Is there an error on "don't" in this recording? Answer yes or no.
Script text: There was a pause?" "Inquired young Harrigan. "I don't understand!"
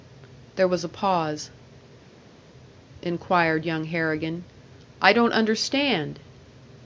no